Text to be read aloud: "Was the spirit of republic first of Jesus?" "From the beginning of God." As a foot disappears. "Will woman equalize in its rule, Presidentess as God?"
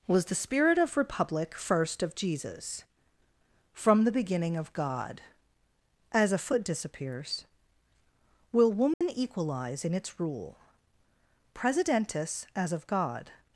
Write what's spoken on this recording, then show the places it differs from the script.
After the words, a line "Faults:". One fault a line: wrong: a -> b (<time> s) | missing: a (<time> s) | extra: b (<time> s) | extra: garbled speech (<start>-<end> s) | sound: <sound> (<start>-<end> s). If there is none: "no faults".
"Was the spirit of republic first of Jesus?" "From the beginning of God." As a foot disappears. "Will woman equalize in its rule, Presidentess as of God?"
Faults:
sound: dropout (8.9-9.0 s)
extra: of (12.7 s)